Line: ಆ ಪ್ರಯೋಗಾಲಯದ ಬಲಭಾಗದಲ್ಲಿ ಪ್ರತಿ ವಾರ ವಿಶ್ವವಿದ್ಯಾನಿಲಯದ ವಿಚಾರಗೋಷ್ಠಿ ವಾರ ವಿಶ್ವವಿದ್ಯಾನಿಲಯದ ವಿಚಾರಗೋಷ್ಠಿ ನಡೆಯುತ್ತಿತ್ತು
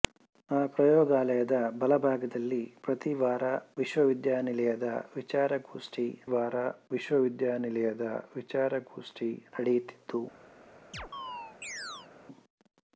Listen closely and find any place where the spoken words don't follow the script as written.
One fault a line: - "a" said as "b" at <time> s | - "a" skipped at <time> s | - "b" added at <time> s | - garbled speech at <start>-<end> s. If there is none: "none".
none